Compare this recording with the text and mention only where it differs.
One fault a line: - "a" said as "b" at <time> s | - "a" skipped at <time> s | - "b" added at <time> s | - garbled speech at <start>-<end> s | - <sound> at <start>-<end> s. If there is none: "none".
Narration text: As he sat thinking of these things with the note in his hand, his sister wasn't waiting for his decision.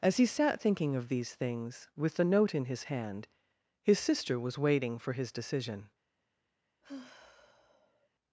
- "wasn't" said as "was" at 4.4 s
- sigh at 6.8-8.1 s